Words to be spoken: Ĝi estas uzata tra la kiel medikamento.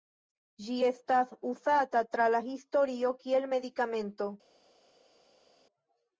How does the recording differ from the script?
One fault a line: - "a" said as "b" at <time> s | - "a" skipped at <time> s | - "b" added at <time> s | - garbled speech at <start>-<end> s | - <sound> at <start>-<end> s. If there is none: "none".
- "historio" added at 2.5 s